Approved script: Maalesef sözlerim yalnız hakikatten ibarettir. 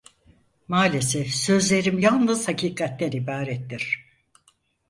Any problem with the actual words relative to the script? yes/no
no